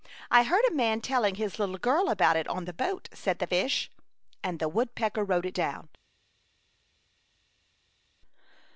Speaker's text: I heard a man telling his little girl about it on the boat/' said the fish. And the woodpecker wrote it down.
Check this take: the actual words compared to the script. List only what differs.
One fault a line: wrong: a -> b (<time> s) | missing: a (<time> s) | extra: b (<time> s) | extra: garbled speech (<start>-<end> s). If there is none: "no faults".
no faults